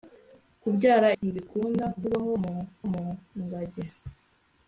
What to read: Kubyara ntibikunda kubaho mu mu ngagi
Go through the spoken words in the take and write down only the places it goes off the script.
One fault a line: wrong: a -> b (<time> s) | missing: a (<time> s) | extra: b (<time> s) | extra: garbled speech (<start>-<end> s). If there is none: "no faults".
no faults